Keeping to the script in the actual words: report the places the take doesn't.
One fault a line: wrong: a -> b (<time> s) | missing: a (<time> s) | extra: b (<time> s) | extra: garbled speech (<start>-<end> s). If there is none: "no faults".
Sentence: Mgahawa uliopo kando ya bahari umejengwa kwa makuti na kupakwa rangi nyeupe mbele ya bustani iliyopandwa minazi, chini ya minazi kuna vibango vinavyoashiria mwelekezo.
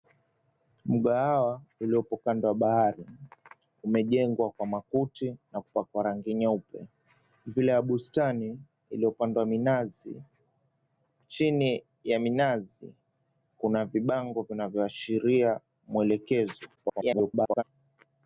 extra: garbled speech (16.8-17.6 s)